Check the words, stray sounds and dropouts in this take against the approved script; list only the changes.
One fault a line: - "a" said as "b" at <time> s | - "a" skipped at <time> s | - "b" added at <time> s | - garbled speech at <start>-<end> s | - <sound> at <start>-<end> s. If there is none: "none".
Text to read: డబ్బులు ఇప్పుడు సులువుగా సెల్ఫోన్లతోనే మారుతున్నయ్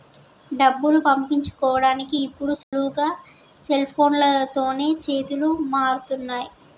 - "పంపించుకోడానికి" added at 1.0 s
- dropout at 2.6-2.7 s
- "చేతులు" added at 5.0 s